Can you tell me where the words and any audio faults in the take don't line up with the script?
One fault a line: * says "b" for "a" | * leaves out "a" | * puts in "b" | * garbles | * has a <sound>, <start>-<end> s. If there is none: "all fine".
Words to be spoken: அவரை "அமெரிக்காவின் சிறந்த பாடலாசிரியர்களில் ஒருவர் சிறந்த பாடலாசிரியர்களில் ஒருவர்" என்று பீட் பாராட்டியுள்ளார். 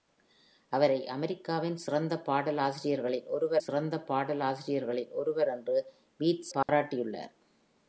* has a dropout, 6.6-6.7 s